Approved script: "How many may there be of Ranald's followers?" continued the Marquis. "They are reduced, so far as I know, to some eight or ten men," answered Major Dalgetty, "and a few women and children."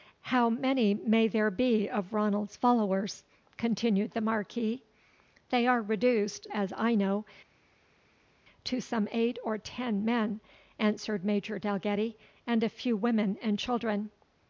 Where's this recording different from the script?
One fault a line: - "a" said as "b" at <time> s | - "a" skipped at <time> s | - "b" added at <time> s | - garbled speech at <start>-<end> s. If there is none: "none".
- "so far" skipped at 6.5 s